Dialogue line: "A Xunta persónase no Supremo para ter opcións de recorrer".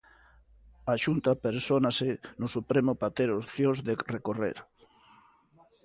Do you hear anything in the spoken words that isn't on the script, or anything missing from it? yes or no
no